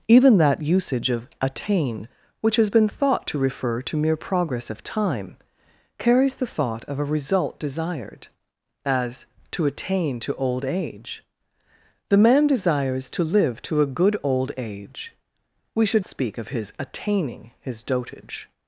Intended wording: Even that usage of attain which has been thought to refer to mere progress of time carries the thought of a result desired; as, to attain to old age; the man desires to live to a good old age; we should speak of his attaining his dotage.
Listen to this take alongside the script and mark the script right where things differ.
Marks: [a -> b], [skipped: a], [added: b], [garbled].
Even that usage of attain which has been thought to refer to mere progress of time carries the thought of a result desired; as, to attain to old age; the man desires to live to a good old age; we should speak of his attaining his dotage.